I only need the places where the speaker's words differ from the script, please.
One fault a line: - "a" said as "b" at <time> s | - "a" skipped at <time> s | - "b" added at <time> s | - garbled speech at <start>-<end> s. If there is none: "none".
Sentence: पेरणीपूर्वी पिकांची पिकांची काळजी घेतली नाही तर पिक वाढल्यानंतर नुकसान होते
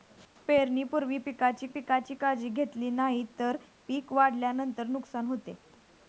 none